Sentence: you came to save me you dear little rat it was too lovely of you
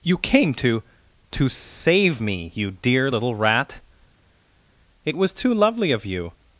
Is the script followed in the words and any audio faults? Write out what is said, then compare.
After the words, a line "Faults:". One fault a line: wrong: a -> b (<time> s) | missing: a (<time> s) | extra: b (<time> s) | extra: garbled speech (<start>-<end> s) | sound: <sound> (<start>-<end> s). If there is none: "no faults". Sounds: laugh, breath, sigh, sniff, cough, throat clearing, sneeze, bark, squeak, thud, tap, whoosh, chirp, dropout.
you came to to save me you dear little rat it was too lovely of you
Faults:
extra: to (1.3 s)